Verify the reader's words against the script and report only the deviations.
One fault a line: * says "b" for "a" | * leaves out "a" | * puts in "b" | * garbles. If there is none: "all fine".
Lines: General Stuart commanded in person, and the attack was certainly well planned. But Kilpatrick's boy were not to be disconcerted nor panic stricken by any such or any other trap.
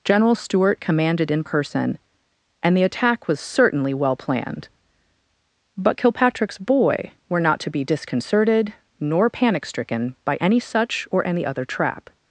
all fine